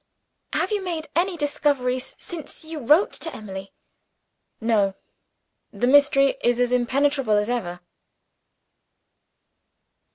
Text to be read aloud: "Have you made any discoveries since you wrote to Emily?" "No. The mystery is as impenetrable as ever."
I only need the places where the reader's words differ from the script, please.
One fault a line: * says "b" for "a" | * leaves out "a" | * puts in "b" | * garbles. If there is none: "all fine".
all fine